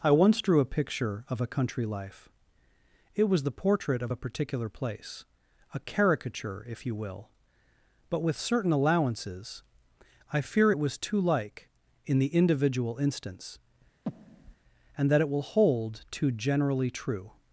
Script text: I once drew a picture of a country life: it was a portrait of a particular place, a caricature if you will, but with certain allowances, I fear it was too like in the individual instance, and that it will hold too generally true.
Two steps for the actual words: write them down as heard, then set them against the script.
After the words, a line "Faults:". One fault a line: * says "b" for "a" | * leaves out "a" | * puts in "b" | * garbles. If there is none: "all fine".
I once drew a picture of a country life: it was the portrait of a particular place, a caricature if you will, but with certain allowances, I fear it was too like in the individual instance, and that it will hold too generally true.
Faults:
* says "the" for "a"